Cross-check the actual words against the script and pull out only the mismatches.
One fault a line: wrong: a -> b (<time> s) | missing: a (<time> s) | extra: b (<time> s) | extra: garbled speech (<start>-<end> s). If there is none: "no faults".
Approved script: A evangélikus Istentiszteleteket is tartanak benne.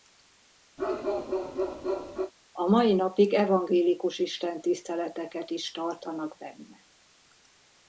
extra: mai napig (2.7 s)